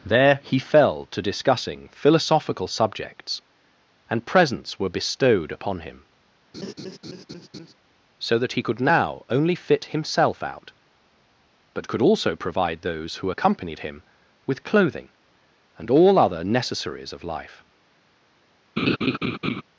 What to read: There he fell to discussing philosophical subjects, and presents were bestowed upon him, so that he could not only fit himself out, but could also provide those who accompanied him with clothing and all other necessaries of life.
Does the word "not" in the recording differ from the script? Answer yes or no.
yes